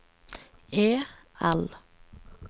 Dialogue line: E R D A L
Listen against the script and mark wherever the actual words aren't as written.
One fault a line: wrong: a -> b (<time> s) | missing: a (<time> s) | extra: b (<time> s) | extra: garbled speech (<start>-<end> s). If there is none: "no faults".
missing: R D A (0.9 s)